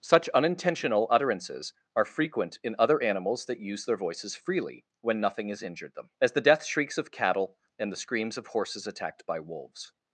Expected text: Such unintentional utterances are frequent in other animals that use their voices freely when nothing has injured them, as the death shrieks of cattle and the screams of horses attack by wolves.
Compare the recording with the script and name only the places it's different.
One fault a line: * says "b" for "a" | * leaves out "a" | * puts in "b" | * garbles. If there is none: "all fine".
* says "attacked" for "attack"